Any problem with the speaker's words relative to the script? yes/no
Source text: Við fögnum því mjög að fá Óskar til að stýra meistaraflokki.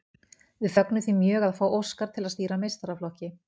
no